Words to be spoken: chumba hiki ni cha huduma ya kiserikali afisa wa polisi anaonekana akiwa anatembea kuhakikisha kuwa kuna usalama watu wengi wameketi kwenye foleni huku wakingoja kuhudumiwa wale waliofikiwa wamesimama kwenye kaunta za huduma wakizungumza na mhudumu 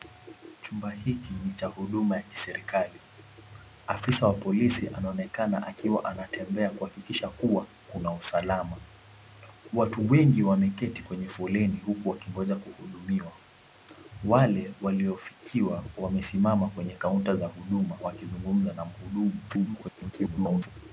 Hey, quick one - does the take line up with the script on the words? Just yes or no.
no